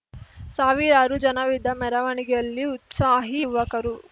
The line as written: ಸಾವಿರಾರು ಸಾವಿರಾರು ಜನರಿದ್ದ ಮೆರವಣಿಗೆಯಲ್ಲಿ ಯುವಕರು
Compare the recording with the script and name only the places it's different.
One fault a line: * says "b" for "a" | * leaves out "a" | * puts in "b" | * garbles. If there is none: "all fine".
* leaves out "ಸಾವಿರಾರು"
* puts in "ಉತ್ಸಾಹಿ"